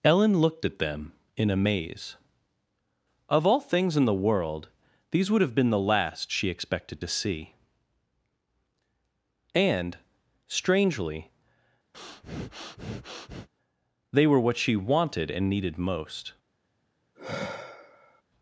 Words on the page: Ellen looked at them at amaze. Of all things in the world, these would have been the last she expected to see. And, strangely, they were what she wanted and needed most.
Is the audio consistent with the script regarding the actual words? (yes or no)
no